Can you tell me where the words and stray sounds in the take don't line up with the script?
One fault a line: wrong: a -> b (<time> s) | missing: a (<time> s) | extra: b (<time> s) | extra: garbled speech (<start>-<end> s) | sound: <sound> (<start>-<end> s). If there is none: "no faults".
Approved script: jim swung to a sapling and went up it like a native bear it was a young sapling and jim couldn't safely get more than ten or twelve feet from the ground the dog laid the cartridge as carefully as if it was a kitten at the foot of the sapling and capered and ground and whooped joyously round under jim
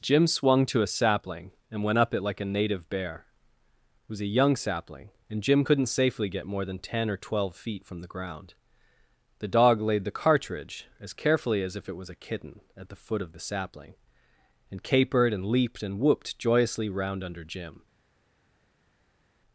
wrong: ground -> leaped (15.5 s)